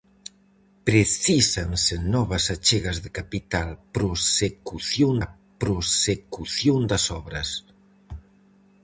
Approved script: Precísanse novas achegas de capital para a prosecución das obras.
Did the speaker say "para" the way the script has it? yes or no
no